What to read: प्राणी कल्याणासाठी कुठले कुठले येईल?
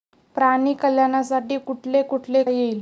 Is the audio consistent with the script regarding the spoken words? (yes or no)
yes